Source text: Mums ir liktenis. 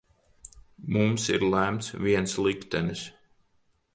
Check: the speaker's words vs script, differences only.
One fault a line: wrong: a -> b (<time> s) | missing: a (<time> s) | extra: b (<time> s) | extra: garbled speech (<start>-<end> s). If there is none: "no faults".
extra: lemts viens (1.5 s)